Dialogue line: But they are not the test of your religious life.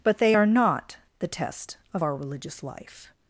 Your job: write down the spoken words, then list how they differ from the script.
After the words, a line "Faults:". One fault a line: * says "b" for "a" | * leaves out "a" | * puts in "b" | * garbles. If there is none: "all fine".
But they are not the test of our religious life.
Faults:
* says "our" for "your"